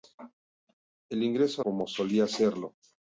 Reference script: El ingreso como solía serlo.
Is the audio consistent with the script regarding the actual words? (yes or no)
yes